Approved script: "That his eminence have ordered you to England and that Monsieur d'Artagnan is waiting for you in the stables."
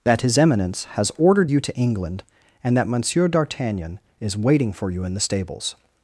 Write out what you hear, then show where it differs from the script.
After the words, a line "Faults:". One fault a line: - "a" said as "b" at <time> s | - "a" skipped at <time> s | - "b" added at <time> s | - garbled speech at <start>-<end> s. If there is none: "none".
"That his eminence has ordered you to England and that Monsieur d'Artagnan is waiting for you in the stables."
Faults:
- "have" said as "has" at 0.9 s